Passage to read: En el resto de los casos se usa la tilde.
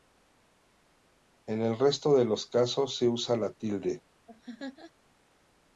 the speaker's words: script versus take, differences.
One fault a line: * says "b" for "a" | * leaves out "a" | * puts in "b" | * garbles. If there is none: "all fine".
all fine